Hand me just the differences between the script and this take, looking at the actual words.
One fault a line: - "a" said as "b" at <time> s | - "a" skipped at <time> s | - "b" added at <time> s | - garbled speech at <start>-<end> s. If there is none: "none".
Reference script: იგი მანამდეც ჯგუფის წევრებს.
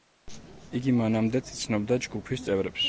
- "იცნობდა" added at 1.6 s